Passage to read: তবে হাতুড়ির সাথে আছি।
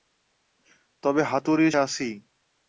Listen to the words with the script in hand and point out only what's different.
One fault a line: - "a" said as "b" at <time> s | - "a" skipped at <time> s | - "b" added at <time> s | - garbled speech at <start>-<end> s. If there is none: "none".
- "সাথে" skipped at 1.7 s